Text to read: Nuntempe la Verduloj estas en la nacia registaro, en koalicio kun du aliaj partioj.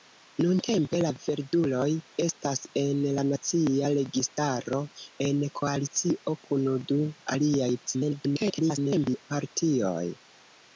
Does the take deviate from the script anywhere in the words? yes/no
yes